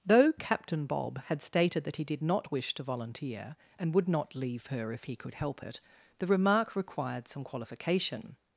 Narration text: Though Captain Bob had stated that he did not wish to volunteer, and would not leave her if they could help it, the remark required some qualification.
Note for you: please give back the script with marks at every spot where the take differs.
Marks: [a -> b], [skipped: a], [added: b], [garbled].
Though Captain Bob had stated that he did not wish to volunteer, and would not leave her if [they -> he] could help it, the remark required some qualification.